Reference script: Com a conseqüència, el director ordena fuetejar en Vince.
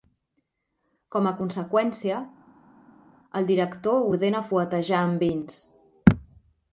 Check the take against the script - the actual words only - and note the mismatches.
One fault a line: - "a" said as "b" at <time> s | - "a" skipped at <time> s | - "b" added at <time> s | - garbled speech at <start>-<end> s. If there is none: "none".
none